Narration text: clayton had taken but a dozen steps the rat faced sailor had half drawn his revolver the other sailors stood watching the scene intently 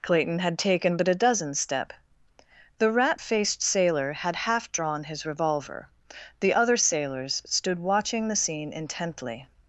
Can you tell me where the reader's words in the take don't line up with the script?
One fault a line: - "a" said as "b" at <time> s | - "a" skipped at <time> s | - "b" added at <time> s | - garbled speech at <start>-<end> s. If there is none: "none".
- "steps" said as "step" at 1.5 s